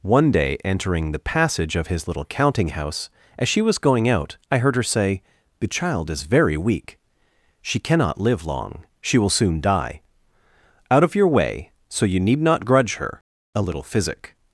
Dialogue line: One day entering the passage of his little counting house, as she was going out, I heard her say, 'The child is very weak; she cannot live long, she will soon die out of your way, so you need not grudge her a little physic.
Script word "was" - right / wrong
right